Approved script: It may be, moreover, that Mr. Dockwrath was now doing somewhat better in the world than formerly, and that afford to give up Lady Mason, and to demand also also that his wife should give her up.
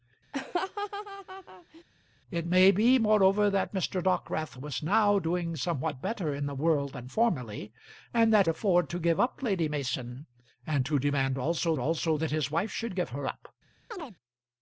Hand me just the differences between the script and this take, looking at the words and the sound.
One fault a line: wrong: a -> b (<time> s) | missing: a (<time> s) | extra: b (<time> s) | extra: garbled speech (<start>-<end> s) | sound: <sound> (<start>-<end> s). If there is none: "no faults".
sound: laugh (0.3-1.8 s)
sound: chirp (13.9-14.2 s)